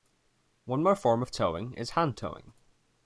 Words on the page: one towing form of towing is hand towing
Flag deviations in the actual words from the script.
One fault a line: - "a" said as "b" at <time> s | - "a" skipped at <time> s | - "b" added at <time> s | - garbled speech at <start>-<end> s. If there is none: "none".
- "towing" said as "more" at 0.8 s